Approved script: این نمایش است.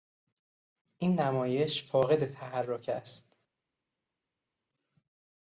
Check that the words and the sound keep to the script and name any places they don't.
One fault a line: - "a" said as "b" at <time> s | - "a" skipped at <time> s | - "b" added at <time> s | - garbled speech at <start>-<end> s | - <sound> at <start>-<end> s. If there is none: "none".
- "فاقد تحرک" added at 1.8 s